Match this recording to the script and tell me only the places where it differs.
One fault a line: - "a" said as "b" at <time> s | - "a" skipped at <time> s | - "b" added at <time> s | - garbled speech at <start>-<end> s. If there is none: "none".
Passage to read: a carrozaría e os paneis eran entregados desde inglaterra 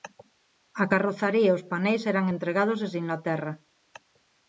none